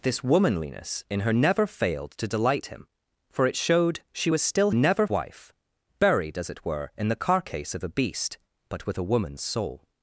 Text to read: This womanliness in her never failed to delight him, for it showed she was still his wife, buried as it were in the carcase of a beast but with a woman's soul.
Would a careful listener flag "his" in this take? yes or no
yes